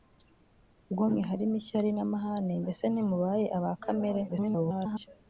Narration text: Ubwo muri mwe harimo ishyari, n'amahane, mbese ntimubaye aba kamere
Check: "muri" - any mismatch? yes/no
yes